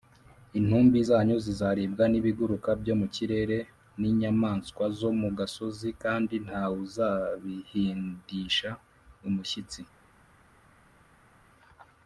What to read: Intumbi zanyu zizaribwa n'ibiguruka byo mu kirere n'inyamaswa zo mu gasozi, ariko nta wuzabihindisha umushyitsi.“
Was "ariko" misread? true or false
true